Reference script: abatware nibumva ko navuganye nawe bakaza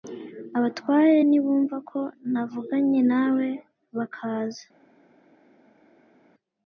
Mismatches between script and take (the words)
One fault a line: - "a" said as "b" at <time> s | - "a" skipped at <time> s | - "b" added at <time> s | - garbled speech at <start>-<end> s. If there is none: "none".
none